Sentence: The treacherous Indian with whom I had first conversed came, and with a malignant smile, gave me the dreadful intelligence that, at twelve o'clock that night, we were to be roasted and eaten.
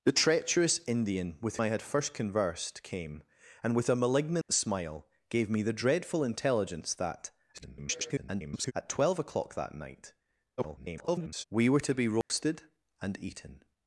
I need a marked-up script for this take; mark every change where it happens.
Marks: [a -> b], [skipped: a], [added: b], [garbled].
The treacherous Indian with [skipped: whom] I had first conversed came, and with a malignant smile, gave me the dreadful intelligence that, [garbled] at twelve o'clock that night, [garbled] we were to be roasted and eaten.